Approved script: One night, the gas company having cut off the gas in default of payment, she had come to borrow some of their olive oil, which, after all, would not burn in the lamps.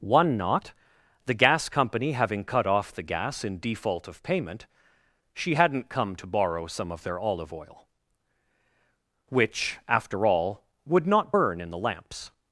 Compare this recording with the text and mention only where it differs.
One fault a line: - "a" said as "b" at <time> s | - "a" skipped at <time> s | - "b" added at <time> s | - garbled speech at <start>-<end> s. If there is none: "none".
- "night" said as "knot" at 0.3 s
- "had" said as "hadn't" at 5.5 s